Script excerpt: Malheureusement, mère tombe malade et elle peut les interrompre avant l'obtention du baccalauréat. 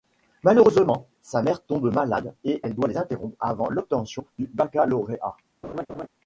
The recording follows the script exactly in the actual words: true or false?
false